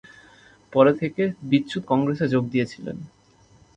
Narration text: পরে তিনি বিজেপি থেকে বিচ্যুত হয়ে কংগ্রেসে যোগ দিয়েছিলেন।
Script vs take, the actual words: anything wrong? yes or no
yes